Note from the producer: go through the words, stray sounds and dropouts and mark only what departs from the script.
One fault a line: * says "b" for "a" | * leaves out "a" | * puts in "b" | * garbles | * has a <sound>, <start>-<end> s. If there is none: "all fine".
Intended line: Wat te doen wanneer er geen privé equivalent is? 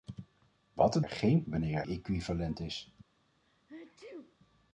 * leaves out "doen wanneer"
* says "wanneer" for "privé"
* has a sneeze, 3.4-4.4 s